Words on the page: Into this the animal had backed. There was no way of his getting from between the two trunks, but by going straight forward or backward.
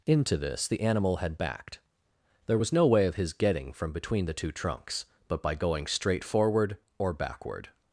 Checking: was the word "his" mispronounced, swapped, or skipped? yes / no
no